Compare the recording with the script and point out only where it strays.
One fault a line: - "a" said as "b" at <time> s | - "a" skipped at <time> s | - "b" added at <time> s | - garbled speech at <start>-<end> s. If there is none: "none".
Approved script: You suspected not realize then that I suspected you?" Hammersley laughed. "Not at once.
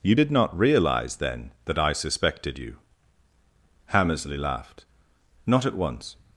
- "suspected" said as "did" at 0.1 s